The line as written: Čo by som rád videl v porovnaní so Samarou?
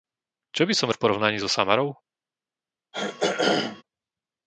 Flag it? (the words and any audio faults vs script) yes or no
yes